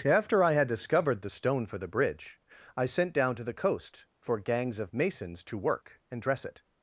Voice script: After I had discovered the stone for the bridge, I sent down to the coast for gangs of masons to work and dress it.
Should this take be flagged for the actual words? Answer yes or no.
no